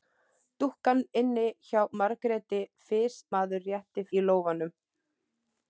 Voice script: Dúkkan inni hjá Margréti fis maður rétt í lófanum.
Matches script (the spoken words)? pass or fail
pass